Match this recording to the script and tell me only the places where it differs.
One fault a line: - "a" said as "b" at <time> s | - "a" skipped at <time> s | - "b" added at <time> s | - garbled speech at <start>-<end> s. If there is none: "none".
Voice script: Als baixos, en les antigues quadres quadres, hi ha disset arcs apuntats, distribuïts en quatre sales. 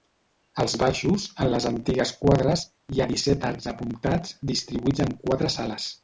- "quadres" skipped at 2.6 s